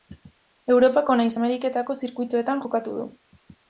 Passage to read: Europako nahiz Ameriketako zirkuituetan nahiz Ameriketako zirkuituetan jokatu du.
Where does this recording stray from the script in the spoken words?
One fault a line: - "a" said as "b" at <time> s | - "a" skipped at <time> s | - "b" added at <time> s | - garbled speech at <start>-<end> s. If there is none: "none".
- "nahiz Ameriketako zirkuituetan" skipped at 2.6 s